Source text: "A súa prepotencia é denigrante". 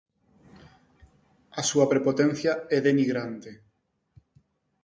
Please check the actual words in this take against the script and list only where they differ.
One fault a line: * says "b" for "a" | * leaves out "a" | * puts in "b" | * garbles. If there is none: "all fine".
all fine